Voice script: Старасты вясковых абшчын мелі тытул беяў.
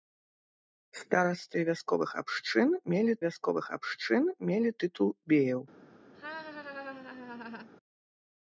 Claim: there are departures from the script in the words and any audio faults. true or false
true